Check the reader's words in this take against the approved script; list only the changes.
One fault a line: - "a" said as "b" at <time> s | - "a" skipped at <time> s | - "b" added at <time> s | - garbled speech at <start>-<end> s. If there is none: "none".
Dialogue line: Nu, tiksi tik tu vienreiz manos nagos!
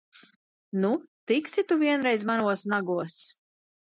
- "tik" skipped at 1.6 s